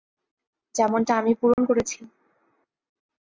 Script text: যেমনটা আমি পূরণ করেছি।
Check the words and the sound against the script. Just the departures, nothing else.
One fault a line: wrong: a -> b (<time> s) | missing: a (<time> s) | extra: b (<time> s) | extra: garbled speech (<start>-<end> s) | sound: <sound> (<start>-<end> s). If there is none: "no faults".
sound: dropout (1.5-1.6 s)